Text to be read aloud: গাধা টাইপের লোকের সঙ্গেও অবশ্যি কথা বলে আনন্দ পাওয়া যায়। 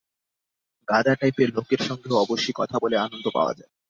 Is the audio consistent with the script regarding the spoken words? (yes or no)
yes